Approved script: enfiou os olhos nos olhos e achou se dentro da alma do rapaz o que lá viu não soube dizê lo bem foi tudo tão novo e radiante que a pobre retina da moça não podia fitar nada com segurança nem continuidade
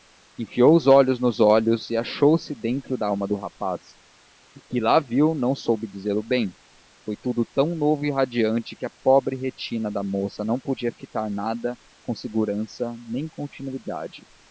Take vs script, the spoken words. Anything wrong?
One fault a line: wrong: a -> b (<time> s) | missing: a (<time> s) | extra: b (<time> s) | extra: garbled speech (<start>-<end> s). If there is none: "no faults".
no faults